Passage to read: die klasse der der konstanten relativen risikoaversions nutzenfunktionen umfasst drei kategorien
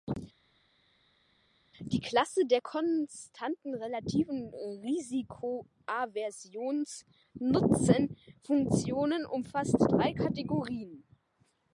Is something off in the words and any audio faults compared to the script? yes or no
yes